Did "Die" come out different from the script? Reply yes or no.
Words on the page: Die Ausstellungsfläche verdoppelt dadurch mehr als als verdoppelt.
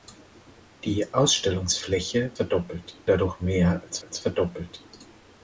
no